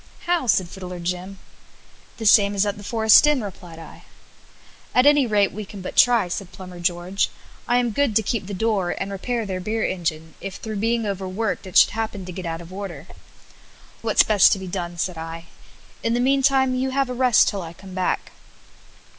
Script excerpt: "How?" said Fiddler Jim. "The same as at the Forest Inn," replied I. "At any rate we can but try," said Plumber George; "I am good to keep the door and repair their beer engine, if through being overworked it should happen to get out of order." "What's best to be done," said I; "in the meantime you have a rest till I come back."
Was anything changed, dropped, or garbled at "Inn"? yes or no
no